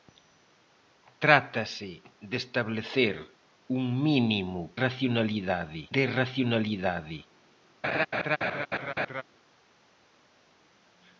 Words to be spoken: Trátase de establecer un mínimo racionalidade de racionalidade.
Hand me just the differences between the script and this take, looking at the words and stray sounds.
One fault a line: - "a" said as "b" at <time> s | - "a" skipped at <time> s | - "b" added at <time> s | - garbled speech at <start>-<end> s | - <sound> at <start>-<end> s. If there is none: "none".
- laugh at 7.8-9.2 s